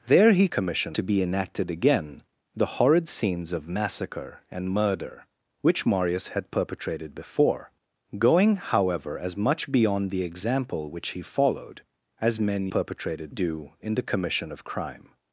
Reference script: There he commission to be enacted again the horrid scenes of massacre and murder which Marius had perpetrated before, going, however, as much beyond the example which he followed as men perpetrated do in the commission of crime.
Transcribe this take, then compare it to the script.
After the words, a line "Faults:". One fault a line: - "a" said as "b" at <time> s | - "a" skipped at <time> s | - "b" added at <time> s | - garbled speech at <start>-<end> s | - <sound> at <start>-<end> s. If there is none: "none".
There he commission to be enacted again the horrid scenes of massacre and murder which Marius had perpetrated before, going, however, as much beyond the example which he followed as men perpetrated do in the commission of crime.
Faults:
none